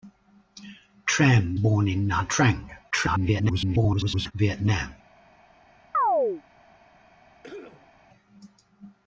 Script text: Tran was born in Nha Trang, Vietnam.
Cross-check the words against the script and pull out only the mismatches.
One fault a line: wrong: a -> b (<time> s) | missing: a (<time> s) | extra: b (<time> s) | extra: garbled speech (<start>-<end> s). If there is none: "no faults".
missing: was (1.6 s)
extra: garbled speech (2.9-4.3 s)